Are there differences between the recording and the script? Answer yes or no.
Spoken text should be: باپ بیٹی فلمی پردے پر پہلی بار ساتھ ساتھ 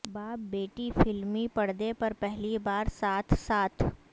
no